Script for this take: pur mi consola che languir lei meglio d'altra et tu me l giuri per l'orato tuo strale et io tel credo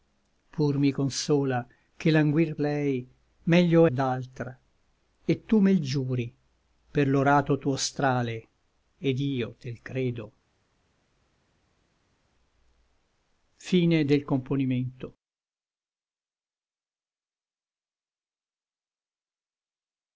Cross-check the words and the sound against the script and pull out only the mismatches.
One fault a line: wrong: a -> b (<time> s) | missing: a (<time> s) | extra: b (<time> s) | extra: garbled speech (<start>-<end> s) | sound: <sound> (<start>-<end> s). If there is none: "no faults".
no faults